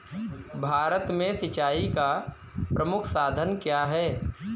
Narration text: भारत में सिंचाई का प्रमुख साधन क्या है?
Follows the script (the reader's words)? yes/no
yes